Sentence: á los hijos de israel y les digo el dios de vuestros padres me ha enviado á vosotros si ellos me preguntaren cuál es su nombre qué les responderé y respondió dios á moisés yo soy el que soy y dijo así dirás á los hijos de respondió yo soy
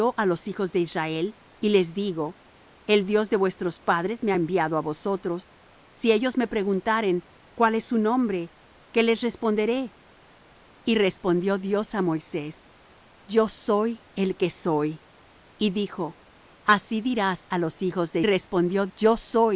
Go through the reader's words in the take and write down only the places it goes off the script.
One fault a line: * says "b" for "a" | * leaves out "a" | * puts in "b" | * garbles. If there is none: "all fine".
all fine